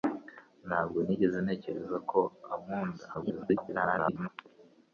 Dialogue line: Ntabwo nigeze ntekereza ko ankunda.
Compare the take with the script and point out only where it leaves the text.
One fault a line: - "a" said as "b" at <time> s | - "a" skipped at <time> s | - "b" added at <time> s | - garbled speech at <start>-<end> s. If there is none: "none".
- garbled speech at 3.1-4.3 s